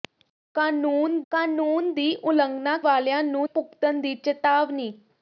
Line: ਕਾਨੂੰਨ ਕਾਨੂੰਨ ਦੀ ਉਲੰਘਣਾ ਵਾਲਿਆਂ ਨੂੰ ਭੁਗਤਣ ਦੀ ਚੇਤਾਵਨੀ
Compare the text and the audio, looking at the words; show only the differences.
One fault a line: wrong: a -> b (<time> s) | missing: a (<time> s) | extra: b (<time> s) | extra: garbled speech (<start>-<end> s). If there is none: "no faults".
no faults